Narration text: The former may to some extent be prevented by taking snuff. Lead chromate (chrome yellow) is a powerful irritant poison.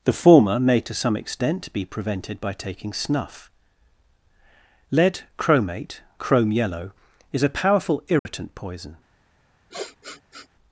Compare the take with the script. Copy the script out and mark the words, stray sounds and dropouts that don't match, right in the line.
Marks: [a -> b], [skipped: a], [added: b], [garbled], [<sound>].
The former may to some extent be prevented by taking snuff. Lead chromate (chrome yellow) is a powerful irritant [dropout] poison. [sniff]